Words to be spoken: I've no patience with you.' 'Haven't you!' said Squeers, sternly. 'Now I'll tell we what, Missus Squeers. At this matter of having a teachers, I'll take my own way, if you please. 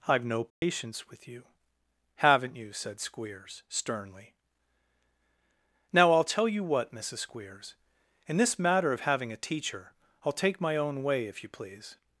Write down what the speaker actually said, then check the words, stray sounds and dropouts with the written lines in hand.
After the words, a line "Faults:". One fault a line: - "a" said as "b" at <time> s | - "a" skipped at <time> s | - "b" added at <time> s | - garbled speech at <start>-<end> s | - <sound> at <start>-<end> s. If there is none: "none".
I've no patience with you.' 'Haven't you!' said Squeers, sternly. 'Now I'll tell you what, Missus Squeers. In this matter of having a teacher, I'll take my own way, if you please.
Faults:
- dropout at 0.5-0.6 s
- "we" said as "you" at 6.5 s
- "At" said as "In" at 8.2 s
- "teachers" said as "teacher" at 9.4 s